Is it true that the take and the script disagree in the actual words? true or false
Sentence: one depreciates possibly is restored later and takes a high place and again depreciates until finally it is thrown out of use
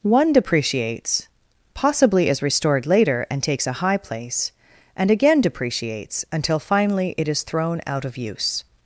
false